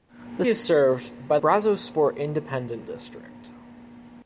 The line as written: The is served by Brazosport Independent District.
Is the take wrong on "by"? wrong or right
right